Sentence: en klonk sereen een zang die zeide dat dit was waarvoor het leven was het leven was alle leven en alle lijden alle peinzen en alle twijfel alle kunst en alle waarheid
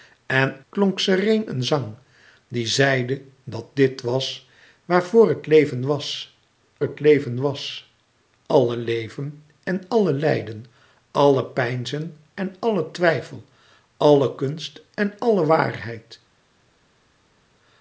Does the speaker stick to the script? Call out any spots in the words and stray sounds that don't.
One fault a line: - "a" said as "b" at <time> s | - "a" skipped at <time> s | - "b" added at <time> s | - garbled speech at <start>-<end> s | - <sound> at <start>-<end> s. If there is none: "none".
none